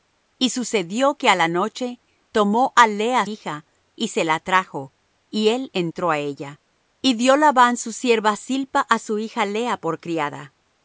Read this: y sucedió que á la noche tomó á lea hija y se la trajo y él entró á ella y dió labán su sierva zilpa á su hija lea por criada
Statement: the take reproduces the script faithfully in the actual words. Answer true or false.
true